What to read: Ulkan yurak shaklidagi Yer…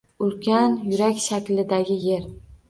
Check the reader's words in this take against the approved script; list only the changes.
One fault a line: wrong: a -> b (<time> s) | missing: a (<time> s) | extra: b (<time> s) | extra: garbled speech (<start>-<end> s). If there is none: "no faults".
no faults